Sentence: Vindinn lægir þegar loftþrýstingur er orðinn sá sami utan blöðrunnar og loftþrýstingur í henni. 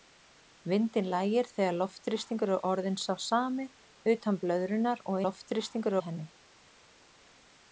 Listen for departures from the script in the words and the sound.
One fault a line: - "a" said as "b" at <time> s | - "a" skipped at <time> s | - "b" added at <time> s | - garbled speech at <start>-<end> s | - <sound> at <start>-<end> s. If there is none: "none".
none